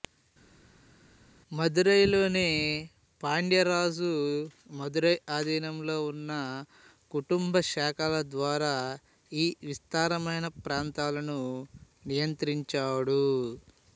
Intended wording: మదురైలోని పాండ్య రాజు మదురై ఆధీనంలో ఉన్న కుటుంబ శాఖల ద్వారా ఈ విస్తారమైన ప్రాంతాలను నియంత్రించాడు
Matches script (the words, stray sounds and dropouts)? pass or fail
pass